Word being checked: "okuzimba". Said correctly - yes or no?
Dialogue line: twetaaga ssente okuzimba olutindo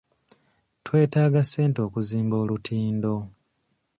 yes